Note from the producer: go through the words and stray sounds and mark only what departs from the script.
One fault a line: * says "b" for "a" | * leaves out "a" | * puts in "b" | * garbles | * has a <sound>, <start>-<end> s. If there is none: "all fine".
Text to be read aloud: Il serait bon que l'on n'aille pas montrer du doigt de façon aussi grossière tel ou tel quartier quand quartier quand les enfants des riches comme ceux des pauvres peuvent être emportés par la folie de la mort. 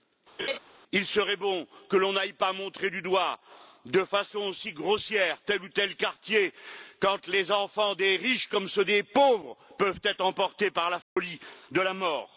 * has a laugh, 0.4-0.6 s
* leaves out "quartier quand"
* has a dropout, 11.0-11.2 s